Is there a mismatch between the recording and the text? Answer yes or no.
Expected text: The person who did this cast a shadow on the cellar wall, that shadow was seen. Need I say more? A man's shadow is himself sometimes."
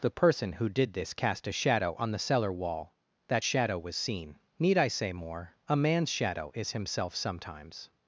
no